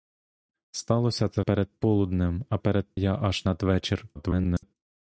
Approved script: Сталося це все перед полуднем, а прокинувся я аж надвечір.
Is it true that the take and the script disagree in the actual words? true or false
true